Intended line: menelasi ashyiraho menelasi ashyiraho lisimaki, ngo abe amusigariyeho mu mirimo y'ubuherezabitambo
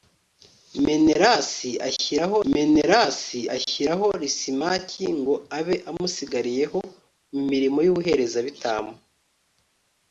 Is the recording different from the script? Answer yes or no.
no